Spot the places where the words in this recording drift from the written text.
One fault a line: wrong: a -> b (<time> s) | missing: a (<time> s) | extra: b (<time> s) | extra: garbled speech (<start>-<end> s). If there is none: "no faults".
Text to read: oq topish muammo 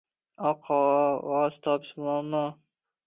extra: qog‘oz (0.7 s)